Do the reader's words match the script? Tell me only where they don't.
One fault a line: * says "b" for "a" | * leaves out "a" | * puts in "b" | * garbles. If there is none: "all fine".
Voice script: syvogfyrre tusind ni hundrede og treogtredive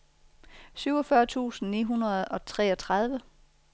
all fine